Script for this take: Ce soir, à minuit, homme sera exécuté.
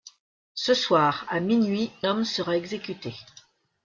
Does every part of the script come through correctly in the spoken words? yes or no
yes